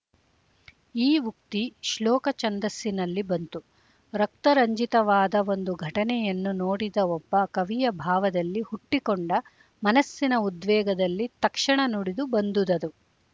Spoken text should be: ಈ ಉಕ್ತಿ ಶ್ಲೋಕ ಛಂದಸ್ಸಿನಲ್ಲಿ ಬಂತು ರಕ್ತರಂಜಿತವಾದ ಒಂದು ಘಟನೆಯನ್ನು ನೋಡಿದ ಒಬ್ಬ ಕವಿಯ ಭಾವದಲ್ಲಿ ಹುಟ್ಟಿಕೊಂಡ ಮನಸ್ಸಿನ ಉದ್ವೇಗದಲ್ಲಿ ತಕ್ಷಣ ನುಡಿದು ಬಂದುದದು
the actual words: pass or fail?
pass